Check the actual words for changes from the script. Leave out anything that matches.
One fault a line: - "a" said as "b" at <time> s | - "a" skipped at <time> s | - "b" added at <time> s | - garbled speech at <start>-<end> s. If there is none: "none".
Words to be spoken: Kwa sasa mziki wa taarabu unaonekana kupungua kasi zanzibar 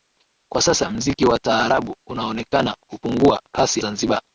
none